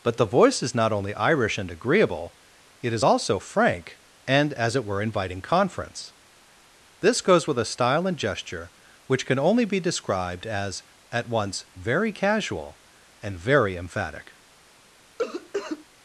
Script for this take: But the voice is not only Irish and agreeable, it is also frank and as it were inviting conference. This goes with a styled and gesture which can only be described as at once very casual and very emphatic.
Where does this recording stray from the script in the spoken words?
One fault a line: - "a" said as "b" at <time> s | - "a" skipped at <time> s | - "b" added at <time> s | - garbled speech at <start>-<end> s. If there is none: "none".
- "styled" said as "style" at 7.7 s